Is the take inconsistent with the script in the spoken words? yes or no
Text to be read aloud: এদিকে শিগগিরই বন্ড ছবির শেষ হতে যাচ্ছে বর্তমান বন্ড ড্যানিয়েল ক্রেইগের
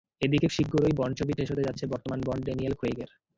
no